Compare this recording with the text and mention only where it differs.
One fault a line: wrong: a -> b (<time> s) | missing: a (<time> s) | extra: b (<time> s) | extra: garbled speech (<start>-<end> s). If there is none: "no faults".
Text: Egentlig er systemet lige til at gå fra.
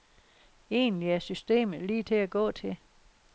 wrong: fra -> til (2.5 s)